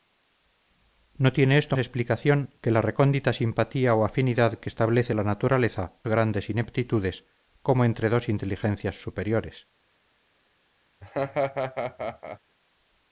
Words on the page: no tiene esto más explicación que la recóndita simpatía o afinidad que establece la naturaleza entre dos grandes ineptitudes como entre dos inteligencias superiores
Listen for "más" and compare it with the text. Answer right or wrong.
wrong